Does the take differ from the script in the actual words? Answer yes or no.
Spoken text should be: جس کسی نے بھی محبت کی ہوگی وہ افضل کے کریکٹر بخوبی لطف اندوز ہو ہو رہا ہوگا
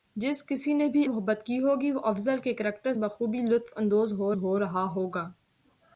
no